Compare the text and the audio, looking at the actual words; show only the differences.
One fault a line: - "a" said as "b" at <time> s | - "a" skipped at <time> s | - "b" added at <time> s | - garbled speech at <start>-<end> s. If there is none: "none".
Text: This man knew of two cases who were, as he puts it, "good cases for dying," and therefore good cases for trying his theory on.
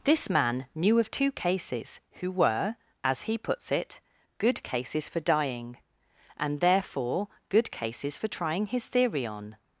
none